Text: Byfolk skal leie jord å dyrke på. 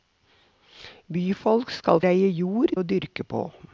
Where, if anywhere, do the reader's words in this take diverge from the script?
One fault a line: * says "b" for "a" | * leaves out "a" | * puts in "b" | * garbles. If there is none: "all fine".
all fine